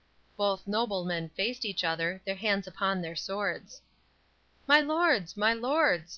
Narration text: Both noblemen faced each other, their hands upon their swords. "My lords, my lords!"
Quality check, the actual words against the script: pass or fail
pass